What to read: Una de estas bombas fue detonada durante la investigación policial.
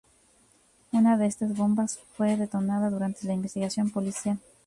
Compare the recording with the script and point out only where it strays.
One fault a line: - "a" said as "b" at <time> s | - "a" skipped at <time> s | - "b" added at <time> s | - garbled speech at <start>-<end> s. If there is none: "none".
none